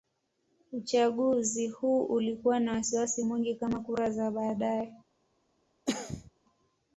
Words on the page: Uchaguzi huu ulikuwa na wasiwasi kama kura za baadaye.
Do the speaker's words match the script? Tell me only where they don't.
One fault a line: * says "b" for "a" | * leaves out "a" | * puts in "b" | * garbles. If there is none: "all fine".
* puts in "mwingi"